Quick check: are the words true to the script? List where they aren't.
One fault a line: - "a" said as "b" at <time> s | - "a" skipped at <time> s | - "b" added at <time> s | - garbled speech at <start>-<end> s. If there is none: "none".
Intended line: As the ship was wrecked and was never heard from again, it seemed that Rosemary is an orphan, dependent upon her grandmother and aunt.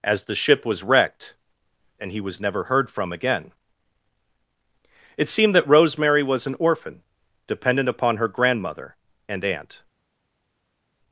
- "he" added at 2.1 s
- "is" said as "was" at 6.2 s